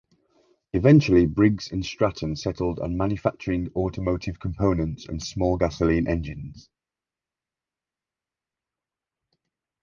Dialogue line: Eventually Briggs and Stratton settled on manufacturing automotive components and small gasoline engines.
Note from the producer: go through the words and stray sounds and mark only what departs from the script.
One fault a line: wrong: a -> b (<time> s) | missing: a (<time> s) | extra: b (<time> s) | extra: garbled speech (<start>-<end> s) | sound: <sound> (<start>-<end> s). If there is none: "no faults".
no faults